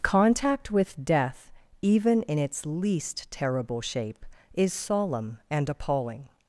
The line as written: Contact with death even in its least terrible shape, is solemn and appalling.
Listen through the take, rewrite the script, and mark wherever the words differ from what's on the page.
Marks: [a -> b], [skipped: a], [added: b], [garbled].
Contact with death even in its least terrible shape, is solemn and appalling.